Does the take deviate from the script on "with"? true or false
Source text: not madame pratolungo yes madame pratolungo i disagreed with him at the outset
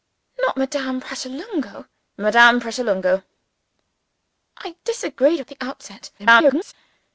true